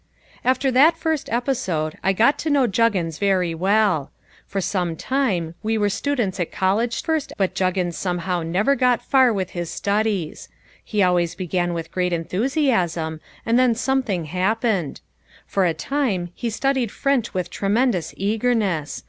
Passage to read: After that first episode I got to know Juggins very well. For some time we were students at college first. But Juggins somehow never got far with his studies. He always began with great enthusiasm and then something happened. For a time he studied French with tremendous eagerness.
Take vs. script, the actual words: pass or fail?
pass